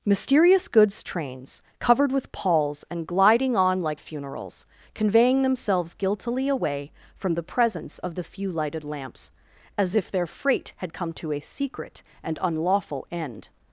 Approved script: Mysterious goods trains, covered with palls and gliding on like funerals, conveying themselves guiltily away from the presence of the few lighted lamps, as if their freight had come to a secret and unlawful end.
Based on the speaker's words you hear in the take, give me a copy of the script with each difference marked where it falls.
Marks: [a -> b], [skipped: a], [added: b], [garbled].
Mysterious goods trains, covered with palls and gliding on like funerals, conveying themselves guiltily away from the presence of the few lighted lamps, as if their freight had come to a secret and unlawful end.